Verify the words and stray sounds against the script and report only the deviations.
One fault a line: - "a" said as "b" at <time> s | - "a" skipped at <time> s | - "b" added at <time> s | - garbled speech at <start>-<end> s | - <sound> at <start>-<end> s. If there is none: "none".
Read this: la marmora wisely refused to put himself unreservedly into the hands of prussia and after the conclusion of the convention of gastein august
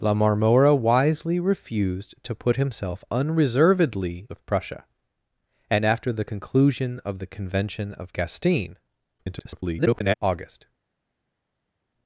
- "into the hands" skipped at 4.3 s
- garbled speech at 9.2-10.2 s